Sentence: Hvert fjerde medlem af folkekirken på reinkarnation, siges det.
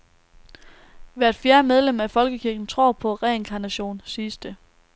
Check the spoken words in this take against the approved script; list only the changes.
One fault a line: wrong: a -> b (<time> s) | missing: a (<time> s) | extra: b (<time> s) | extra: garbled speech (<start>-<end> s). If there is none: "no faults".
extra: tror (2.7 s)